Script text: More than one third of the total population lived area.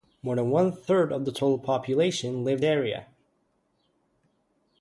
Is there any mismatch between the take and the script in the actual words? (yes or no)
no